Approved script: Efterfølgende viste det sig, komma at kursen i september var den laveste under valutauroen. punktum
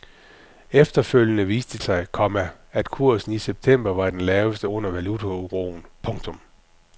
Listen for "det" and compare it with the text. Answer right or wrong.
wrong